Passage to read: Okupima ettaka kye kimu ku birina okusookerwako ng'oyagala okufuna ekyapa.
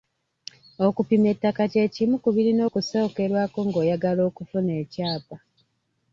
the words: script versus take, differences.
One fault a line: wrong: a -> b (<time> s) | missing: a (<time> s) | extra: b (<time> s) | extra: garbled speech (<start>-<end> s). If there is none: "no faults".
no faults